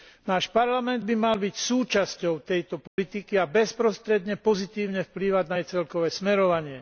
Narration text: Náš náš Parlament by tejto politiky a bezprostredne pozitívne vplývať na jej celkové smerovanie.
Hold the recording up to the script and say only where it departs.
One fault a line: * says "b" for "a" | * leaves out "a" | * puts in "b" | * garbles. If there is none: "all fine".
* leaves out "náš"
* puts in "mal byť súčasťou"